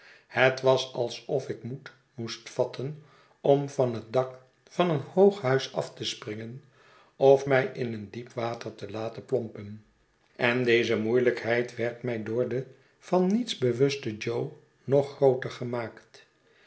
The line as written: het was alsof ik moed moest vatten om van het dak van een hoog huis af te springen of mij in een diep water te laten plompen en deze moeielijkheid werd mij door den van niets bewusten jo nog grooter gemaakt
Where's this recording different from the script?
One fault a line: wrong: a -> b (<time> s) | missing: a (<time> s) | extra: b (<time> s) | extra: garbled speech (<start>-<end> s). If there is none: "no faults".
no faults